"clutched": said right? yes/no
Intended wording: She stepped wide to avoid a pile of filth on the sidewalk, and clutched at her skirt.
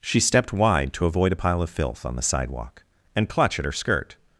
no